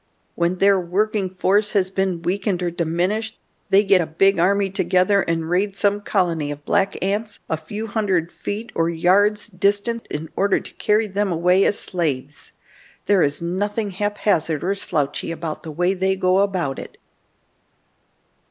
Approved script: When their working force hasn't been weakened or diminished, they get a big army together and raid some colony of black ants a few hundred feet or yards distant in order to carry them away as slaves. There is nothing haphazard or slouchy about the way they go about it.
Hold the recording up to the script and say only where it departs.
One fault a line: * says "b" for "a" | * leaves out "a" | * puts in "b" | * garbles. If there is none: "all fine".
* says "has" for "hasn't"